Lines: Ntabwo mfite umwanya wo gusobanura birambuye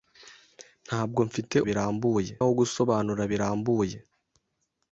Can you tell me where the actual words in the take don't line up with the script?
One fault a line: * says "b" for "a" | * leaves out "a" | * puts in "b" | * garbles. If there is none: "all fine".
* says "birambuye" for "umwanya"